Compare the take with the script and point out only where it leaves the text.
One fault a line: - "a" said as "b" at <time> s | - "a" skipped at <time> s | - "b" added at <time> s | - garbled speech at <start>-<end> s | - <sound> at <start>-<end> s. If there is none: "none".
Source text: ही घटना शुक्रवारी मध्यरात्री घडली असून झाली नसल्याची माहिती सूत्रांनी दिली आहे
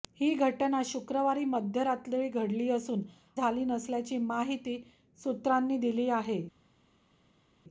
none